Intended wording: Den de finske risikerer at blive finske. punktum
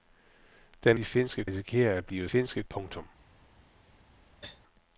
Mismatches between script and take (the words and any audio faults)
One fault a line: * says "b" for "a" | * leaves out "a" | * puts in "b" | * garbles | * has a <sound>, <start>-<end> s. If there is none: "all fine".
* has a cough, 4.4-4.6 s